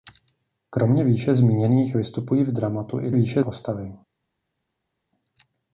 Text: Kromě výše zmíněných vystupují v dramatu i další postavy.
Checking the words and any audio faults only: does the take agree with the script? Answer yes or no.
no